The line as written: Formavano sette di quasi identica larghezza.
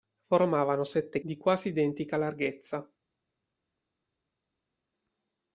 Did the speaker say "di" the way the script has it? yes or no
yes